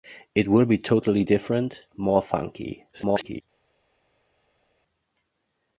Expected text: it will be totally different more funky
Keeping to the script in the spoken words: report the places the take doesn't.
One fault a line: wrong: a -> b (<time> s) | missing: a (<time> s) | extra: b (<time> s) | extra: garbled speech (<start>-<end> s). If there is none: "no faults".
extra: garbled speech (2.9-3.4 s)